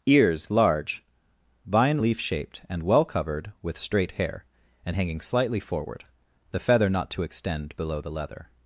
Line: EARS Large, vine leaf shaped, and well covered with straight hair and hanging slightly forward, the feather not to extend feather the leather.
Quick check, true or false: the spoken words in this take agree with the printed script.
false